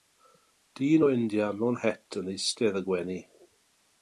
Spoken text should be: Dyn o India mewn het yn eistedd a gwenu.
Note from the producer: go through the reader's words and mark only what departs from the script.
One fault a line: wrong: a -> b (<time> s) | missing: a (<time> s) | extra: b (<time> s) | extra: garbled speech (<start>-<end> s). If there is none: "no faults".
no faults